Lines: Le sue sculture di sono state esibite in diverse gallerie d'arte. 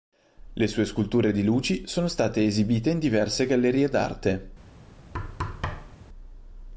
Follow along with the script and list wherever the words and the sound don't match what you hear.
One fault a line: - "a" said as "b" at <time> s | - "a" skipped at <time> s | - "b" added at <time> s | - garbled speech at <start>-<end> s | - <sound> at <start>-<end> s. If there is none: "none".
- "luci" added at 1.4 s
- thud at 5.1-6.0 s